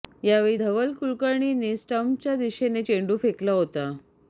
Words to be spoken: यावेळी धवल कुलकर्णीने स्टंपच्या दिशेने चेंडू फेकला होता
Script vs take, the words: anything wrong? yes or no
no